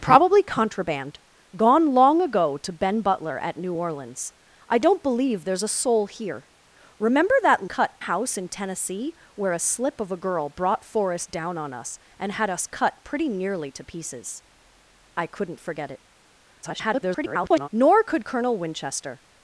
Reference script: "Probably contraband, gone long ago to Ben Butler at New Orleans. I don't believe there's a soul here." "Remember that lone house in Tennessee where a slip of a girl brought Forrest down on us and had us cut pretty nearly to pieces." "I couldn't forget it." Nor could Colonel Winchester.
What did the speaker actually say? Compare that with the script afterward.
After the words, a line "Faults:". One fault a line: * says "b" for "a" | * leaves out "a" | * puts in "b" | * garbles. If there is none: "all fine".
"Probably contraband, gone long ago to Ben Butler at New Orleans. I don't believe there's a soul here." "Remember that cut house in Tennessee where a slip of a girl brought Forrest down on us and had us cut pretty nearly to pieces." "I couldn't forget it." [garbled] Nor could Colonel Winchester.
Faults:
* says "cut" for "lone"
* garbles